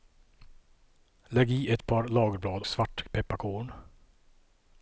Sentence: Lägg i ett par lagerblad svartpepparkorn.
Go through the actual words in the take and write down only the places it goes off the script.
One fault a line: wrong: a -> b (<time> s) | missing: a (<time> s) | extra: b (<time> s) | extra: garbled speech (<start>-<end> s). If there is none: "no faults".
no faults